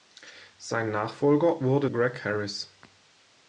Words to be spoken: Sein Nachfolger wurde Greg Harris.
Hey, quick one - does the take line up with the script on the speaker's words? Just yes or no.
yes